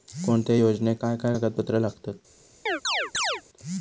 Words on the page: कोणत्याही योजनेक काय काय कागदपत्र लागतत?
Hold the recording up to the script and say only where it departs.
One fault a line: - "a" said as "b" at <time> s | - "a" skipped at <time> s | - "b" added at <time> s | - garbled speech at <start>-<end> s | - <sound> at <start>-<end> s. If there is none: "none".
- chirp at 2.7-3.4 s